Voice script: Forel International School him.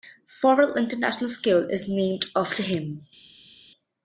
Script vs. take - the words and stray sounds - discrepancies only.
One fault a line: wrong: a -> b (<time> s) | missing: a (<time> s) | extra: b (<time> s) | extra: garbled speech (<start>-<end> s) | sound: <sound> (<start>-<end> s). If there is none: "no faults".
extra: is named after (1.7 s)